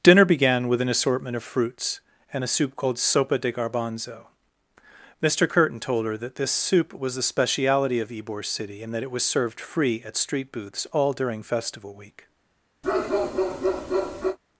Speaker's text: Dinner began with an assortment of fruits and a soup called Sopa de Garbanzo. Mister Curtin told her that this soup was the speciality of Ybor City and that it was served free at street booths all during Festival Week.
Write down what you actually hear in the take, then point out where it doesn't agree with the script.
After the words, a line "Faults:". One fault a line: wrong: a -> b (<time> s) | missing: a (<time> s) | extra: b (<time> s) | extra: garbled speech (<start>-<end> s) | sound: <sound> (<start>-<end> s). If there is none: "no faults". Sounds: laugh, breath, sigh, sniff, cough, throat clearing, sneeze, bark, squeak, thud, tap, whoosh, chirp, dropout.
Dinner began with an assortment of fruits and a soup called Sopa de Garbanzo. Mister Curtin told her that this soup was the speciality of Ybor City and that it was served free at street booths all during Festival Week.
Faults:
sound: bark (12.8-14.4 s)